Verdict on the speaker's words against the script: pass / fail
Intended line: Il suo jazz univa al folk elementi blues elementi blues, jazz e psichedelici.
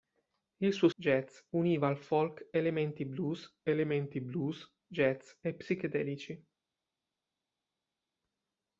pass